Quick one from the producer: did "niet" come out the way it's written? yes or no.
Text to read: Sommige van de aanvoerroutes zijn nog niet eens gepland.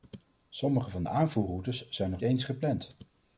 no